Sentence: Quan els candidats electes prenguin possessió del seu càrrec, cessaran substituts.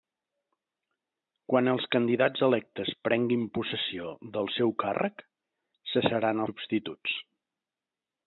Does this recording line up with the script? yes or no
yes